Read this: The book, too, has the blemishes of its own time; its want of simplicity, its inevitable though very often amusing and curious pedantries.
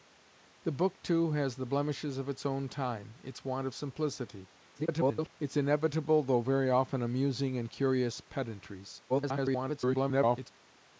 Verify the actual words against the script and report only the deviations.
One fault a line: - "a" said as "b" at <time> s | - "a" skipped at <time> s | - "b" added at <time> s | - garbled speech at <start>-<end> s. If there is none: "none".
- garbled speech at 4.7-5.3 s
- garbled speech at 9.1-10.5 s